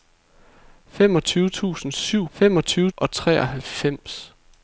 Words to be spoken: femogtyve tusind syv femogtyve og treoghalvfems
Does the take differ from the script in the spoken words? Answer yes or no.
no